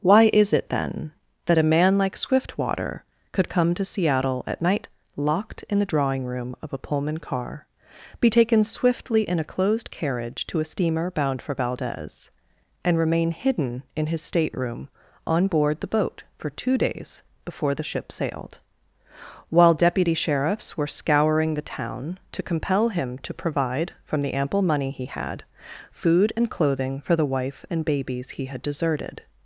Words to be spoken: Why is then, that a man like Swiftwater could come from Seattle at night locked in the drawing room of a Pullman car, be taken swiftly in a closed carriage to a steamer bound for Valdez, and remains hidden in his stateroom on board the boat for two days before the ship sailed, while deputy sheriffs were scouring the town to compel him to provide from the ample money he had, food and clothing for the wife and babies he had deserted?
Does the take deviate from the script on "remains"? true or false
true